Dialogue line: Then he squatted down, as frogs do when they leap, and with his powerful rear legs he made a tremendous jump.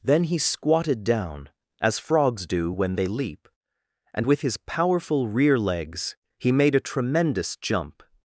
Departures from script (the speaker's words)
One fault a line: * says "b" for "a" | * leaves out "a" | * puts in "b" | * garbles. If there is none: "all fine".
all fine